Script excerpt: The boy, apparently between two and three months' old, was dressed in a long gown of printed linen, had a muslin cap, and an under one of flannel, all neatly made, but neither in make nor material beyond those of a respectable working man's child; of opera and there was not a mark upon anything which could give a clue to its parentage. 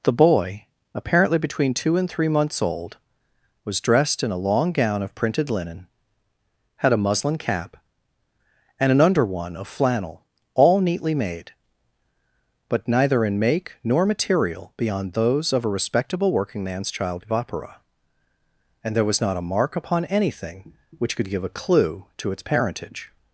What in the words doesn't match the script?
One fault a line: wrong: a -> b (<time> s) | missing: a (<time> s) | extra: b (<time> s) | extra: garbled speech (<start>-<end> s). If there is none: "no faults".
no faults